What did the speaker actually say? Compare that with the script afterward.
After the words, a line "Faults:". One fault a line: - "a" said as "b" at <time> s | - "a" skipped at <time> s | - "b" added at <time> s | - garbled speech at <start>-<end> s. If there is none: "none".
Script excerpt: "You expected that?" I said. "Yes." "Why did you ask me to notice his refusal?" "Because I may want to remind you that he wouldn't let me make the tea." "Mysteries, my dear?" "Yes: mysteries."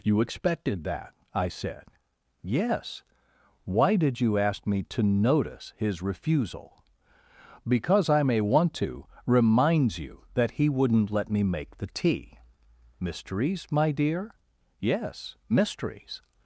"You expected that?" I said. "Yes." "Why did you ask me to notice his refusal?" "Because I may want to reminds you that he wouldn't let me make the tea." "Mysteries, my dear?" "Yes: mysteries."
Faults:
- "remind" said as "reminds" at 9.2 s